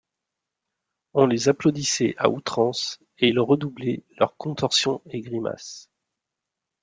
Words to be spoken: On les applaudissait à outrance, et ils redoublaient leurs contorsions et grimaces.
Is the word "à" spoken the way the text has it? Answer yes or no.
yes